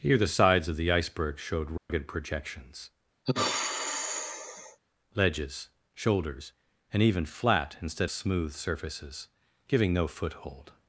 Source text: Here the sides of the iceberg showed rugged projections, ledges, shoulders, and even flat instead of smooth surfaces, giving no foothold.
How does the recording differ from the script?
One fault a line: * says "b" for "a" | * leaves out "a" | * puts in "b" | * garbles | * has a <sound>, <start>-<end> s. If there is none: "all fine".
* has a dropout, 1.8-1.9 s
* has a sigh, 3.3-4.8 s
* leaves out "of"